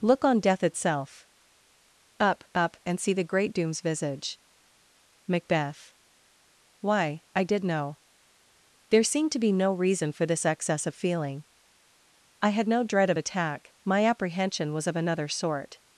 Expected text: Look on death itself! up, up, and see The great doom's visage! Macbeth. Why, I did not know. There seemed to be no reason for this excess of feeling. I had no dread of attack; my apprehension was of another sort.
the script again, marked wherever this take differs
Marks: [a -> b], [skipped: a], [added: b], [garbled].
Look on death itself! up, up, and see The great doom's visage! Macbeth. Why, I did [skipped: not] know. There seemed to be no reason for this excess of feeling. I had no dread of attack; my apprehension was of another sort.